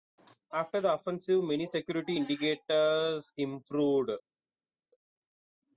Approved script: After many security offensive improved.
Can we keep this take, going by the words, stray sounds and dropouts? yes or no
no